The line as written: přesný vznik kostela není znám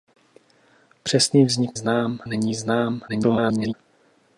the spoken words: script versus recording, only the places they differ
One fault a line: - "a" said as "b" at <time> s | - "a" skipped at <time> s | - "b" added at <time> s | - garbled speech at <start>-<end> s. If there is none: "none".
- "kostela" said as "znám" at 1.7 s
- garbled speech at 3.1-3.7 s